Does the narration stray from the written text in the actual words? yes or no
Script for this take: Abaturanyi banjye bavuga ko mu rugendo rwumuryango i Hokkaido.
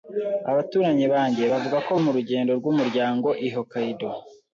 no